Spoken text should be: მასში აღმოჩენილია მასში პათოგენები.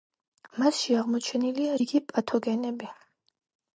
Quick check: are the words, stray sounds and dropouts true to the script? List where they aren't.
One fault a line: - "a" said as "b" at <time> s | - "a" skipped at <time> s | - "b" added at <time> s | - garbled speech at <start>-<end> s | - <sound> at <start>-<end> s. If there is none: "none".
- "მასში" said as "რიგი" at 1.8 s